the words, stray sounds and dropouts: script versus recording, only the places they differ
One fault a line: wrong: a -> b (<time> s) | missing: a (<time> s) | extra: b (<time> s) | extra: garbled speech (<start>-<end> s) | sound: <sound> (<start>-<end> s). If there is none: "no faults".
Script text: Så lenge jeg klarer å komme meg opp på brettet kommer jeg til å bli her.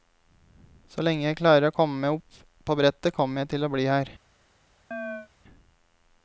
sound: chirp (4.9-5.3 s)